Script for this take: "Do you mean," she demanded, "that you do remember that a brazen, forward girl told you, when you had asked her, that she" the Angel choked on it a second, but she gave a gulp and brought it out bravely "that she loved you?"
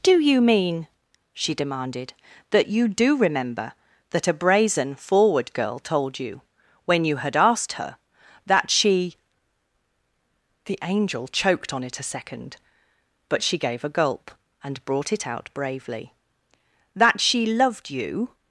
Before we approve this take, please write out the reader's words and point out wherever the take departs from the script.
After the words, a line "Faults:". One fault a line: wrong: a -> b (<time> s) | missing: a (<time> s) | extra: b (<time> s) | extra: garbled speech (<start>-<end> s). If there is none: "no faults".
"Do you mean," she demanded, "that you do remember that a brazen, forward girl told you, when you had asked her, that she" the Angel choked on it a second, but she gave a gulp and brought it out bravely "that she loved you?"
Faults:
no faults